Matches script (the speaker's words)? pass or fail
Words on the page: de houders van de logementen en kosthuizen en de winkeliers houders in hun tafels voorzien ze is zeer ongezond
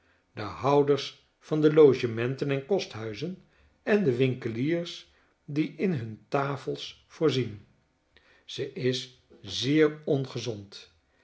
fail